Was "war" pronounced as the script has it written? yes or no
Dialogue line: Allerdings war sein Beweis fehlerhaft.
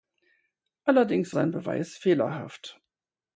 no